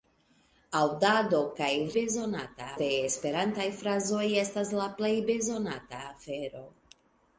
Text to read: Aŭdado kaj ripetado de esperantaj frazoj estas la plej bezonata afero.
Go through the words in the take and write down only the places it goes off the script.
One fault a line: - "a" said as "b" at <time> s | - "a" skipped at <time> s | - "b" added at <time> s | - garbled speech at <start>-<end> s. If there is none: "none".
- "ripetado" said as "bezonata" at 2.0 s